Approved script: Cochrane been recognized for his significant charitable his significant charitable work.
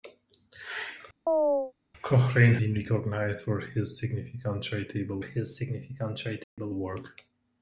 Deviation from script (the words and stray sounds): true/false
true